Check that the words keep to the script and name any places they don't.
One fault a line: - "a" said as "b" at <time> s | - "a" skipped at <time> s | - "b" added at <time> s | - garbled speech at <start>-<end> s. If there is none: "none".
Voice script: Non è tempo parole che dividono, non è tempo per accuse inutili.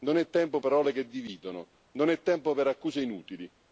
none